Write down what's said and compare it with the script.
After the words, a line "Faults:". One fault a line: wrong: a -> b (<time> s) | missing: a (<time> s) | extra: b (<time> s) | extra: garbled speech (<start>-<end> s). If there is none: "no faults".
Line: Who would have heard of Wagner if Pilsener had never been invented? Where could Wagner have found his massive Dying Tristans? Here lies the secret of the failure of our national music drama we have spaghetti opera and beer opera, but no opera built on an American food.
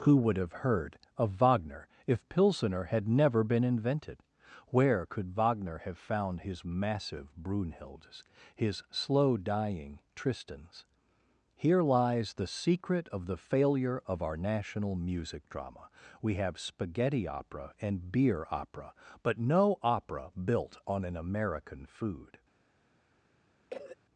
Who would have heard of Wagner if Pilsener had never been invented? Where could Wagner have found his massive Brunhildes, his slow dying Tristans? Here lies the secret of the failure of our national music drama we have spaghetti opera and beer opera, but no opera built on an American food.
Faults:
extra: Brunhildes his slow (7.4 s)